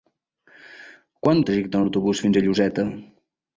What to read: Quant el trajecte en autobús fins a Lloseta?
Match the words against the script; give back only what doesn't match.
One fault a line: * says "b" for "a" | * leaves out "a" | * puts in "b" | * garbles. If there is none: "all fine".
all fine